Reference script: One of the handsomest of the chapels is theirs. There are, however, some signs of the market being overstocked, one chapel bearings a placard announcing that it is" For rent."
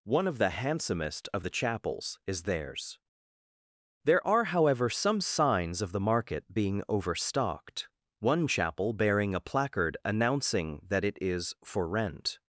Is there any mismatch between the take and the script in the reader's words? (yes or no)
yes